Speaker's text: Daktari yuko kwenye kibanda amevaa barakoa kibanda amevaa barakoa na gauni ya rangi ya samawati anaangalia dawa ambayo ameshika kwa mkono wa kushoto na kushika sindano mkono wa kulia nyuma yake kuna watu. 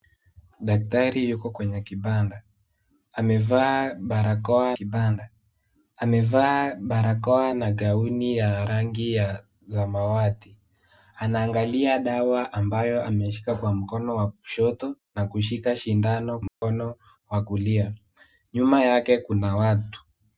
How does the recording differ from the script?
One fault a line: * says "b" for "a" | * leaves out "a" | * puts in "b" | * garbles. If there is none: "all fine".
all fine